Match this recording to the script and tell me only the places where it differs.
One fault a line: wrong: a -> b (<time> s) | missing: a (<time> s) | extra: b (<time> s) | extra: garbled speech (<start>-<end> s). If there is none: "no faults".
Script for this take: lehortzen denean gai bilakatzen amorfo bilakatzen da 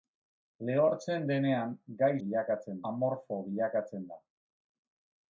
no faults